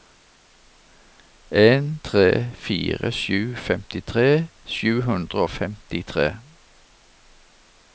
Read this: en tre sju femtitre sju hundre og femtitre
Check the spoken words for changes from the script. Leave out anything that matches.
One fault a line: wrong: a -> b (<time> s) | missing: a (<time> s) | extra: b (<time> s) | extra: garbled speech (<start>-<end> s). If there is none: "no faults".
extra: fire (2.7 s)